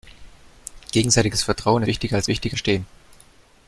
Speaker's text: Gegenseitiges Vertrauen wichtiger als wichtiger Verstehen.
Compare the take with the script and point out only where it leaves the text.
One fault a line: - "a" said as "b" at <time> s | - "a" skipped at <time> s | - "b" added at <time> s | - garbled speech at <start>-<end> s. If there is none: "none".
none